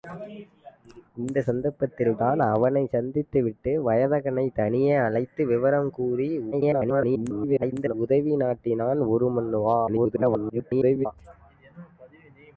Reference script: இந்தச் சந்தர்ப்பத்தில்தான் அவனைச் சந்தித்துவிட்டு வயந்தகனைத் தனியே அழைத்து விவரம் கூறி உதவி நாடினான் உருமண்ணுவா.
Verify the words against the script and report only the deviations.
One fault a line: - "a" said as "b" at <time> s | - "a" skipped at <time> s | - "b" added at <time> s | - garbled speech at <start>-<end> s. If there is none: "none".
- garbled speech at 6.5-7.9 s
- garbled speech at 9.9-11.1 s